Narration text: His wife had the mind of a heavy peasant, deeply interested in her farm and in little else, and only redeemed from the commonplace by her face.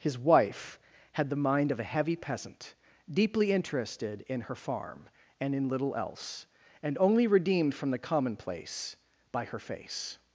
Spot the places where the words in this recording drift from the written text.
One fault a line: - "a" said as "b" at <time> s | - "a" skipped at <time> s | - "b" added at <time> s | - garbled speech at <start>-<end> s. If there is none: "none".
none